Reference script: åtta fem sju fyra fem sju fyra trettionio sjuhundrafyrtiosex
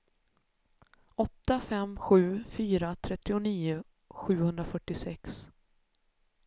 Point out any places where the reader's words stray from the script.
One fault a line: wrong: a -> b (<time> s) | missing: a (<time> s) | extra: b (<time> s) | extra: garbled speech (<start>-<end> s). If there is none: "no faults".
missing: fem sju fyra (2.9 s)